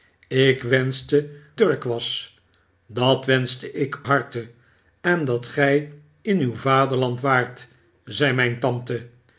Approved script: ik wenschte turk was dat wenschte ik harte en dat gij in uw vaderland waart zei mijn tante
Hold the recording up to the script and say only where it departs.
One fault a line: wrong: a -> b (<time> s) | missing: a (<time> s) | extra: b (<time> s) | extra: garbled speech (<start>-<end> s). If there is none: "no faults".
no faults